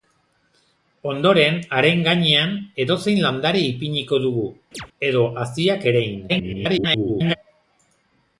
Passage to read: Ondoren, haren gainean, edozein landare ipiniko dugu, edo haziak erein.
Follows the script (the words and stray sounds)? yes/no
no